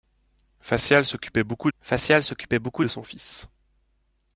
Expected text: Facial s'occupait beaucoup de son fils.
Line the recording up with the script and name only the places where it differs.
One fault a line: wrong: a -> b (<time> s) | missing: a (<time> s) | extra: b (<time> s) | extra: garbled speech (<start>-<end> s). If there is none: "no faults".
extra: facial s'occupait beaucoup (1.8 s)